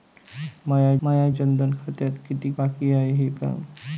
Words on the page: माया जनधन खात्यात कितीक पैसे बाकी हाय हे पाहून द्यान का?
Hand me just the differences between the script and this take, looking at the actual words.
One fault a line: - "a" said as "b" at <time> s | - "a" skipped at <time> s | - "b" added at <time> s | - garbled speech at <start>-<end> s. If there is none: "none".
- "माया" added at 1.0 s
- "पैसे" skipped at 2.5 s
- "पाहून द्यान" skipped at 3.3 s